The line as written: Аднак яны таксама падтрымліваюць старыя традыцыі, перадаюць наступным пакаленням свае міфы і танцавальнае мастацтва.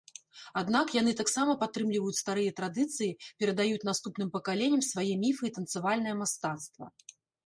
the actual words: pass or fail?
pass